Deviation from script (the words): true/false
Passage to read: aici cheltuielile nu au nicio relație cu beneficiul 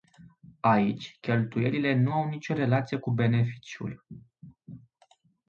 false